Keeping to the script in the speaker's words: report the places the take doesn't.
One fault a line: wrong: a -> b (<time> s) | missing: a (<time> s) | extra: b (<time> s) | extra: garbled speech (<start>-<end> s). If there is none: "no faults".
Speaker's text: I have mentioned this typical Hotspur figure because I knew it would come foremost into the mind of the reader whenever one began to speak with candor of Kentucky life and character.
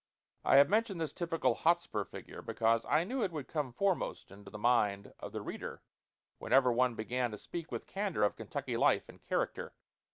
no faults